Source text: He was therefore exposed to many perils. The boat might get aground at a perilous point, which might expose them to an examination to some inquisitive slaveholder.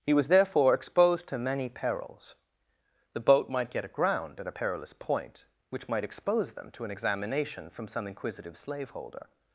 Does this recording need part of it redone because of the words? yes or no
yes